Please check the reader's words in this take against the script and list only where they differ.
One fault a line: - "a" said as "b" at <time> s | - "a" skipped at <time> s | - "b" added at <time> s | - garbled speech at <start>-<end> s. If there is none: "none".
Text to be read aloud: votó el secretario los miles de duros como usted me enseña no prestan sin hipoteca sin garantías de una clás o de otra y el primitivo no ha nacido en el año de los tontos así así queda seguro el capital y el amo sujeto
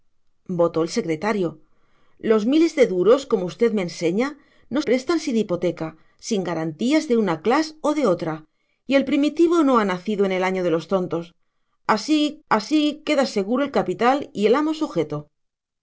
none